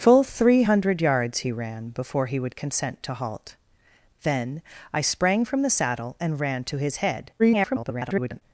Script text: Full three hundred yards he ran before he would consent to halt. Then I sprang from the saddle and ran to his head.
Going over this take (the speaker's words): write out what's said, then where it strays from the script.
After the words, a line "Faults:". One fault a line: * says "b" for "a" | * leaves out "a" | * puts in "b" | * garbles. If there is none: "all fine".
Full three hundred yards he ran before he would consent to halt. Then I sprang from the saddle and ran to his head. [garbled]
Faults:
* garbles